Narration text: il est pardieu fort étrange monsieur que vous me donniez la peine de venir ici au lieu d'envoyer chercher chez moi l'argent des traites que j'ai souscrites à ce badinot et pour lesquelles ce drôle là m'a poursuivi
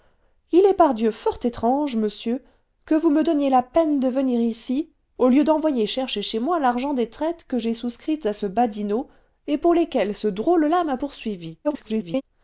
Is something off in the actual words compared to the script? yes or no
yes